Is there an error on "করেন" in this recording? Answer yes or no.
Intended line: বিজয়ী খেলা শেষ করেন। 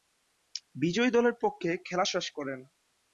no